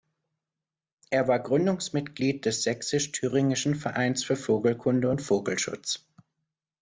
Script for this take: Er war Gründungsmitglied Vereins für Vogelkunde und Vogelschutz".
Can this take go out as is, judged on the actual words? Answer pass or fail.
fail